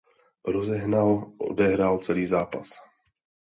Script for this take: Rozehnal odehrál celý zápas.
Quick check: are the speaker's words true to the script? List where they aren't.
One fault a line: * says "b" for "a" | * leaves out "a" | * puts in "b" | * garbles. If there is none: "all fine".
all fine